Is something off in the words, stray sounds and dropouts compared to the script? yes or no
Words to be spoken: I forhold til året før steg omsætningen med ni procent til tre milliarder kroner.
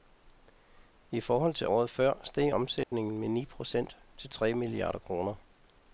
yes